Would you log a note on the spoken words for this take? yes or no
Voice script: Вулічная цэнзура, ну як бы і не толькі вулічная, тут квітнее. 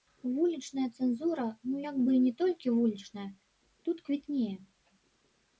no